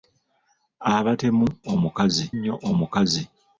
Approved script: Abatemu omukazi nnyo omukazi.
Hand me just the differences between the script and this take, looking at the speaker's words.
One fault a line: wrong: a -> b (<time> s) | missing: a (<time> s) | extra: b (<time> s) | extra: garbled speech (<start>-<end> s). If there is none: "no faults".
no faults